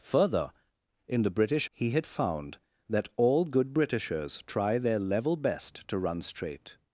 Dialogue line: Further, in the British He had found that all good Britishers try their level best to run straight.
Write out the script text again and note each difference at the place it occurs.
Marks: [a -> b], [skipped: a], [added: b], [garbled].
Further, in the British He had found that all good Britishers try their level best to run straight.